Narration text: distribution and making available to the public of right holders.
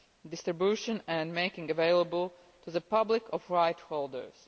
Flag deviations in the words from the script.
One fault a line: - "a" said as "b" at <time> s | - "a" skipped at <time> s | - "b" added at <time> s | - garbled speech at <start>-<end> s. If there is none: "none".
none